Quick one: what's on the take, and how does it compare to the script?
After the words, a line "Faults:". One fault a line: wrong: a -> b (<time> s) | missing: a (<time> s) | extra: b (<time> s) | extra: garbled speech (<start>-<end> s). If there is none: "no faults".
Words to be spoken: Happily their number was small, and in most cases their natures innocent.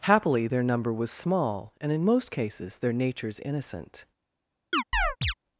Happily their number was small, and in most cases their natures innocent.
Faults:
no faults